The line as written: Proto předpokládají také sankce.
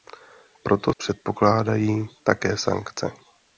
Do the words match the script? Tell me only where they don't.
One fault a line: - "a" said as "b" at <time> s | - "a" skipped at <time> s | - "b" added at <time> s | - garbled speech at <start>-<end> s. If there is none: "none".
none